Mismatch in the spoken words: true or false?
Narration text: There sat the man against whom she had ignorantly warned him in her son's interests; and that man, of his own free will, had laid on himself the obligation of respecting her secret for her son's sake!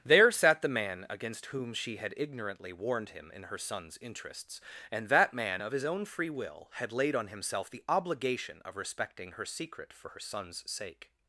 false